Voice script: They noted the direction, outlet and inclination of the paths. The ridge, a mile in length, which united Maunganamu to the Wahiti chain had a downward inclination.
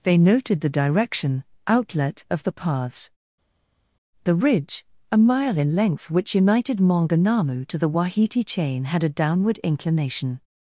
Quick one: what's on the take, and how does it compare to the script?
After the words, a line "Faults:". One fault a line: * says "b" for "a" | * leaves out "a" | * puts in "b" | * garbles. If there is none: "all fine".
They noted the direction, outlet of the paths. The ridge, a mile in length, which united Maunganamu to the Wahiti chain had a downward inclination.
Faults:
* leaves out "and inclination"